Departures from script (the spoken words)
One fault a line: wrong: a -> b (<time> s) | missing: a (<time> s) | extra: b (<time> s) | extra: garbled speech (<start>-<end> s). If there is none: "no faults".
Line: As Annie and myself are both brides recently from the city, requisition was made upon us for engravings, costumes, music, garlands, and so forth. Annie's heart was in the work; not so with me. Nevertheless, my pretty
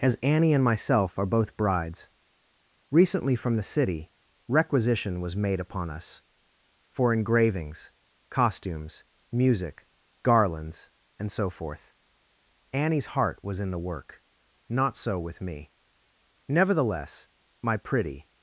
no faults